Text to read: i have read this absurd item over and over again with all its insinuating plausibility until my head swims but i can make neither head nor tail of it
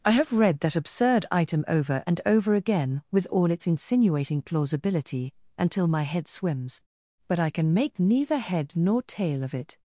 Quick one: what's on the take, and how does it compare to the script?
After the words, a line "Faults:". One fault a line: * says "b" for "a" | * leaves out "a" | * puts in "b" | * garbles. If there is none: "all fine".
i have read that absurd item over and over again with all its insinuating plausibility until my head swims but i can make neither head nor tail of it
Faults:
* says "that" for "this"